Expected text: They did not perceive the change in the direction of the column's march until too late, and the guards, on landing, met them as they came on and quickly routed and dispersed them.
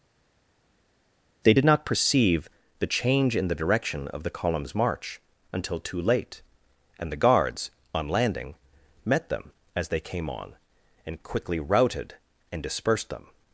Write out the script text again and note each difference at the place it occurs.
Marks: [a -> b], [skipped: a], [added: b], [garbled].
They did not perceive the change in the direction of the column's march until too late, and the guards, on landing, met them as they came on and quickly routed and dispersed them.